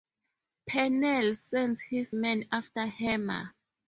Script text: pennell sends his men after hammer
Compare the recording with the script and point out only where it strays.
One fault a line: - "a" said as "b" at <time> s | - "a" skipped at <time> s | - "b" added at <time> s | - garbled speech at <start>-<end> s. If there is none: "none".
none